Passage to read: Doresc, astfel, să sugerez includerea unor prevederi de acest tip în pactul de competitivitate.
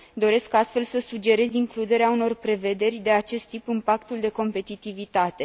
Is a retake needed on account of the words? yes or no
no